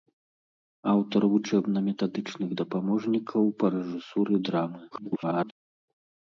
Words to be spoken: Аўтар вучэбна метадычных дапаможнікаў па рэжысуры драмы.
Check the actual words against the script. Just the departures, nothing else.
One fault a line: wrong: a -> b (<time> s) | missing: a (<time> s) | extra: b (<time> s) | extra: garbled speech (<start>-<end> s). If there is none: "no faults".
extra: garbled speech (4.9-5.5 s)